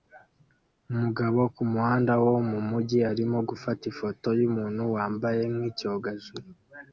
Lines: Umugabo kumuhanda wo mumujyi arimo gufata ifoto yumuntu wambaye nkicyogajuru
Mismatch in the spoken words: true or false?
false